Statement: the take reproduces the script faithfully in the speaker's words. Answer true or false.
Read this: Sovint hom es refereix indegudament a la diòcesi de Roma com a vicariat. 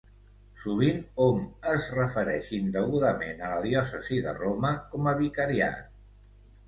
true